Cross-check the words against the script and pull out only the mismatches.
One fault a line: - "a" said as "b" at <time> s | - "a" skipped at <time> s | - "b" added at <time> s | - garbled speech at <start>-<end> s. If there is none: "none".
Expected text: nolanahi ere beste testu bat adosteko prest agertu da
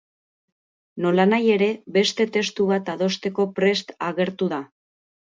none